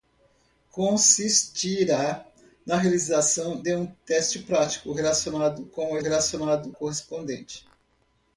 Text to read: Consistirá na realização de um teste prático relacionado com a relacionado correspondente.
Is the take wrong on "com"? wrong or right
right